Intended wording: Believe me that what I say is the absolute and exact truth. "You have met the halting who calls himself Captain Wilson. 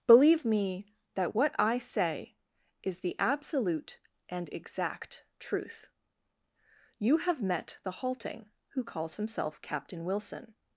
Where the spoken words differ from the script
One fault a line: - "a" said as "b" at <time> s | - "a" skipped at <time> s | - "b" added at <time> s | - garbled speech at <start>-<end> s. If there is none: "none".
none